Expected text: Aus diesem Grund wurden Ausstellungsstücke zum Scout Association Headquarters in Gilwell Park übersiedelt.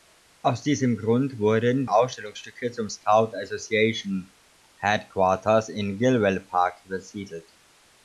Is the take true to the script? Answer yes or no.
yes